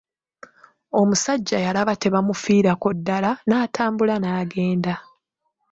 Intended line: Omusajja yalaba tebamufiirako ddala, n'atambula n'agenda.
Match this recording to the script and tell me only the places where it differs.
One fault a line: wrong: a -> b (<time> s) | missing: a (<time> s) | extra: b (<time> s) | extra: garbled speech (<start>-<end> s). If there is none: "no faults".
no faults